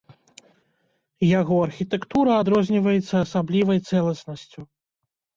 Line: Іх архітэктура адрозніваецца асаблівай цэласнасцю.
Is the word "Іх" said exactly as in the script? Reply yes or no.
no